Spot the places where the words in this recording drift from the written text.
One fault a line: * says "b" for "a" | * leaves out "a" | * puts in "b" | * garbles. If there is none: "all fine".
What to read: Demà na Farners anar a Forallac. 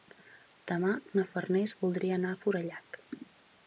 * puts in "voldria"